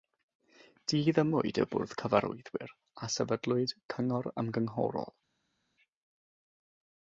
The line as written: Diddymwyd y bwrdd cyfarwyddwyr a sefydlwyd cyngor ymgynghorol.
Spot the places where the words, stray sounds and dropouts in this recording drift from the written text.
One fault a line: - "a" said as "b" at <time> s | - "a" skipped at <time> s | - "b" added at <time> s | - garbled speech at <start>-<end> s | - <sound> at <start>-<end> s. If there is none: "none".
none